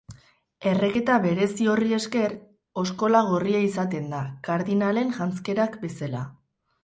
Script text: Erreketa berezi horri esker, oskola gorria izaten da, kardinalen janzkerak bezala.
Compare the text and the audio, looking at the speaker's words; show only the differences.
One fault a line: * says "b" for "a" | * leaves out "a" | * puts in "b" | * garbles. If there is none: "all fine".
all fine